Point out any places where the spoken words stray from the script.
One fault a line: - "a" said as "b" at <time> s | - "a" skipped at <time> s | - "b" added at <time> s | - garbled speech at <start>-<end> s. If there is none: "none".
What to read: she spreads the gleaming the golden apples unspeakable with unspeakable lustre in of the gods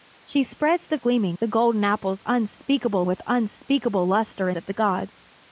none